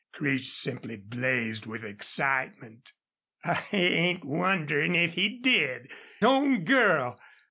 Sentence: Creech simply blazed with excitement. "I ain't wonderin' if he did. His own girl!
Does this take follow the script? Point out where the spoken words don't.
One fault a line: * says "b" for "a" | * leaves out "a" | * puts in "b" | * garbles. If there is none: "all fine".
* leaves out "His"